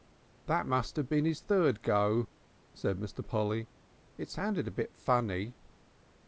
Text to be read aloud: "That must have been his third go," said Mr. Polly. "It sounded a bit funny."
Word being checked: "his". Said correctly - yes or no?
yes